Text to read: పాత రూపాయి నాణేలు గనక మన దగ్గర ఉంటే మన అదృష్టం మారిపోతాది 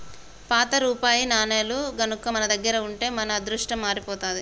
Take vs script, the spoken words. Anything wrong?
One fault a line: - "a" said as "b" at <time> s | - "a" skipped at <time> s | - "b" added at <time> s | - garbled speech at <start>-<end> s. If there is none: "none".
none